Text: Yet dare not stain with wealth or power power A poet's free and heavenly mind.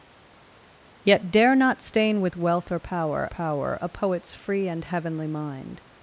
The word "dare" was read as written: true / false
true